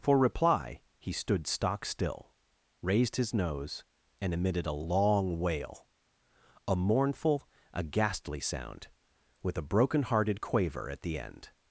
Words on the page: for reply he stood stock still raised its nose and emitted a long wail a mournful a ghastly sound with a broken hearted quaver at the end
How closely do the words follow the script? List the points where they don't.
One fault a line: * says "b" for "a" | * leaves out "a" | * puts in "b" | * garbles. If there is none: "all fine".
* says "his" for "its"